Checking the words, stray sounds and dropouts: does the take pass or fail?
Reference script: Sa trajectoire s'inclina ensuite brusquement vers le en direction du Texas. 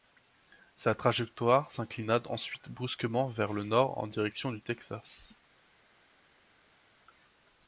fail